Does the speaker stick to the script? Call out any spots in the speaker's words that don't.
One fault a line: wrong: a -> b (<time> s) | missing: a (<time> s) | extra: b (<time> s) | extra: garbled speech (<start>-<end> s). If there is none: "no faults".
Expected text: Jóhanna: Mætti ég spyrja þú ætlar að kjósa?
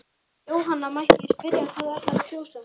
extra: hvað (1.7 s)